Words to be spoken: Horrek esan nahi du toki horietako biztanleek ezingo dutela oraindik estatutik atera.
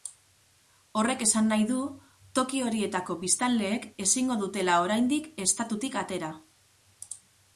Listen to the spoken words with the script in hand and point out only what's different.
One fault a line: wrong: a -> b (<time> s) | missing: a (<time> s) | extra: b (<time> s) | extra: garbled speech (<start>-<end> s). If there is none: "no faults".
no faults